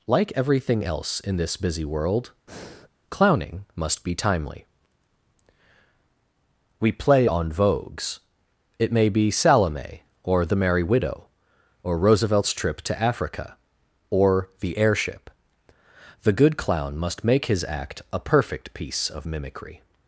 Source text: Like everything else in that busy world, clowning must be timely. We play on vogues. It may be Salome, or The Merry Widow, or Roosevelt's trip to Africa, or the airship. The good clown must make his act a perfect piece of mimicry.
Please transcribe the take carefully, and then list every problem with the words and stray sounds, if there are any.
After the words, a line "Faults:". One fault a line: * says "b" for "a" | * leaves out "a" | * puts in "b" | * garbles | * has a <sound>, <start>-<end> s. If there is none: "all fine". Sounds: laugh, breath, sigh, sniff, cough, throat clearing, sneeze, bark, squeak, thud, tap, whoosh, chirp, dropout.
Like everything else in this busy world, clowning must be timely. We play on vogues. It may be Salome, or The Merry Widow, or Roosevelt's trip to Africa, or the airship. The good clown must make his act a perfect piece of mimicry.
Faults:
* says "this" for "that"
* has a breath, 2.5-2.9 s